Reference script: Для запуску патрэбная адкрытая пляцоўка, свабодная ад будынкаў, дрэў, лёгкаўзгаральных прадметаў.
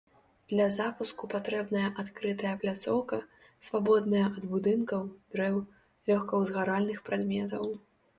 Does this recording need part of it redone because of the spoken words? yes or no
no